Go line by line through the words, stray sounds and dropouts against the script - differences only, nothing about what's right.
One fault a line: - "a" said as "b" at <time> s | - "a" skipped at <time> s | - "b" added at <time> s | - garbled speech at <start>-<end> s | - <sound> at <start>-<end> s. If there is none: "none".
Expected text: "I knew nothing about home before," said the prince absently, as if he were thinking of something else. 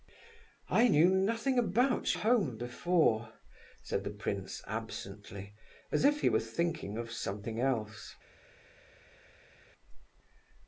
none